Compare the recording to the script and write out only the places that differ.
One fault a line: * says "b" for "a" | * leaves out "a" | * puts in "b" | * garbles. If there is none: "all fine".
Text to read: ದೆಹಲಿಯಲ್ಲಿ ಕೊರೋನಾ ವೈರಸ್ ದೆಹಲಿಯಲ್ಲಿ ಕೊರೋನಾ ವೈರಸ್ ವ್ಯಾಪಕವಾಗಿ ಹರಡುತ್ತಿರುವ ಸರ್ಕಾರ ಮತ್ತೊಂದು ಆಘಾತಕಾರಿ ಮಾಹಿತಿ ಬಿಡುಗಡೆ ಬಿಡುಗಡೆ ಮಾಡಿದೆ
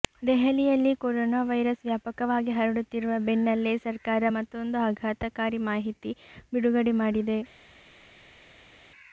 * leaves out "ದೆಹಲಿಯಲ್ಲಿ ಕೊರೋನಾ ವೈರಸ್"
* puts in "ಬೆನ್ನಲ್ಲೇ"
* leaves out "ಬಿಡುಗಡೆ"